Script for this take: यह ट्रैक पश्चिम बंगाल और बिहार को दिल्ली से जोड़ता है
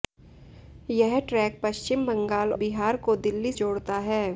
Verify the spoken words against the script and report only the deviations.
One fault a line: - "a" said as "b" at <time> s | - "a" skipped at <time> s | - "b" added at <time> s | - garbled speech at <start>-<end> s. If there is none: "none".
- "और" skipped at 2.5 s
- "से" skipped at 3.5 s